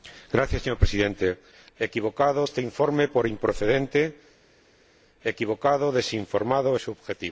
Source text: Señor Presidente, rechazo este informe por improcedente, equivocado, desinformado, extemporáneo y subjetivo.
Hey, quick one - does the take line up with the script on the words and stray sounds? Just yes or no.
no